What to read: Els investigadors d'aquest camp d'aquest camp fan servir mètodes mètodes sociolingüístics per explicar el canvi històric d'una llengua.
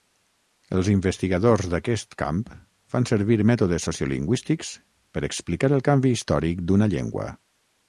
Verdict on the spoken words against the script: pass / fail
fail